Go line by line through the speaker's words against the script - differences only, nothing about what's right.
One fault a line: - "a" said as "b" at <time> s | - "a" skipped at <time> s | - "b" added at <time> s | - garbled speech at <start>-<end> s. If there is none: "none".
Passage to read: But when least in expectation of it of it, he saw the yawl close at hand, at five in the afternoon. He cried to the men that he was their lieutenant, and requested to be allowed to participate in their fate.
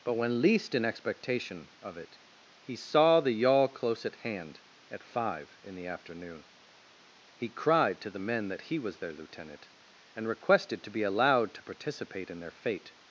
- "of it" skipped at 2.2 s